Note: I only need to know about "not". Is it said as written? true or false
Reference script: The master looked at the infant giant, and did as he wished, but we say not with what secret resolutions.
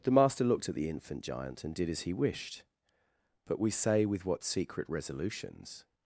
false